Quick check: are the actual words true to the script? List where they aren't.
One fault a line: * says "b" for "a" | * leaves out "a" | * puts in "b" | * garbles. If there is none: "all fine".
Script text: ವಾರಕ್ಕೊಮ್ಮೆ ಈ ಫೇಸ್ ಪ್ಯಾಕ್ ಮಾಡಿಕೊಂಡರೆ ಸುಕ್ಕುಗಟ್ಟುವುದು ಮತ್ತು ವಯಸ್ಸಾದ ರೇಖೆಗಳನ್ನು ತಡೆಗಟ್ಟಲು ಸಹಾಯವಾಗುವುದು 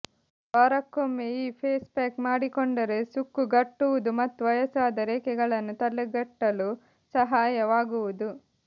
all fine